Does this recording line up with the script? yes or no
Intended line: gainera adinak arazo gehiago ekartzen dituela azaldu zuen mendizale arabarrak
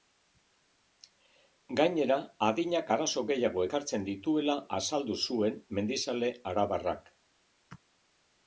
yes